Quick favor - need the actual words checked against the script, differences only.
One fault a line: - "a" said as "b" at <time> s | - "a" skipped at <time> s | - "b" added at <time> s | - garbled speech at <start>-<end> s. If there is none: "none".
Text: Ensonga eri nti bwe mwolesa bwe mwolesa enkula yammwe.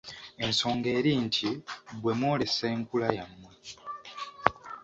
- "bwe mwolesa" skipped at 2.7 s